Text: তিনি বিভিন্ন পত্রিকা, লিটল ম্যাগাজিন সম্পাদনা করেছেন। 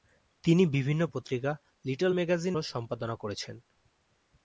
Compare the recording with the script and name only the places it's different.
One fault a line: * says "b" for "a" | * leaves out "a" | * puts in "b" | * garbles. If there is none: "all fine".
all fine